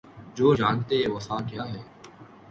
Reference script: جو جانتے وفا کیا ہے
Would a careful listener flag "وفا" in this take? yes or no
no